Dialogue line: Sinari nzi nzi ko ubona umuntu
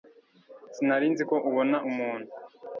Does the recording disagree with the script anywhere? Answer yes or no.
yes